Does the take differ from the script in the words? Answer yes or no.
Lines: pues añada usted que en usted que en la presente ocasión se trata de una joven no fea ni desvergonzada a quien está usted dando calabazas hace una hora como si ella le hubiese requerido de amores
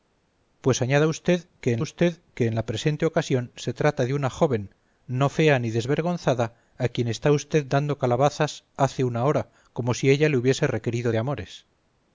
no